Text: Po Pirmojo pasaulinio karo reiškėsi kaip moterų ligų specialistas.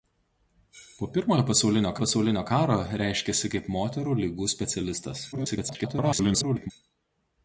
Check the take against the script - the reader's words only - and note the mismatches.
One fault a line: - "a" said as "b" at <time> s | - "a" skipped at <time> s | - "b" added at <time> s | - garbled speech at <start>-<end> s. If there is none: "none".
- "pasaulinio" added at 2.0 s
- garbled speech at 5.3-6.7 s